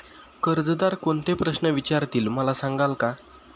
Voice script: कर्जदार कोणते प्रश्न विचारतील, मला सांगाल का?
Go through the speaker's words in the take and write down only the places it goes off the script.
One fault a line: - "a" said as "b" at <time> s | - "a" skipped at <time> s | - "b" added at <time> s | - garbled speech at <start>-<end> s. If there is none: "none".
none